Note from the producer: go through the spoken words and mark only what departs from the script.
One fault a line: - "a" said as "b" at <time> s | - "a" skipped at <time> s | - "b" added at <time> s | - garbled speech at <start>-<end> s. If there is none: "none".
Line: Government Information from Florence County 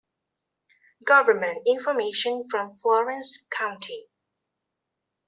none